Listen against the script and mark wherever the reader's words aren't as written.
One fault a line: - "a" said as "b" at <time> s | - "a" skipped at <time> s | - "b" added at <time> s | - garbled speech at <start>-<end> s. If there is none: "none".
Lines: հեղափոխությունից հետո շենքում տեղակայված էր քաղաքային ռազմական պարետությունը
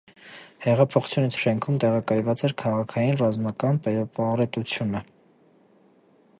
- "հետո" skipped at 1.4 s